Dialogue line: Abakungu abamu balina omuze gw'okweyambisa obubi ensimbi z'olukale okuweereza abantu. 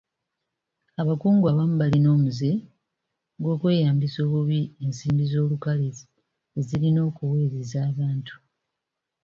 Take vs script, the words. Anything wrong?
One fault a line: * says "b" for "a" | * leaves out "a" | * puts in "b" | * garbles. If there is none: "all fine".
* puts in "ezirina"